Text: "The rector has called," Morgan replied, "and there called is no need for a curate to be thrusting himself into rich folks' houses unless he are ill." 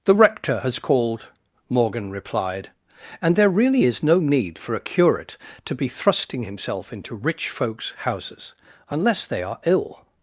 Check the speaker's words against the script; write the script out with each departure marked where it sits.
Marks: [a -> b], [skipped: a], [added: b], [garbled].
"The rector has called," Morgan replied, "and there [called -> really] is no need for a curate to be thrusting himself into rich folks' houses unless [he -> they] are ill."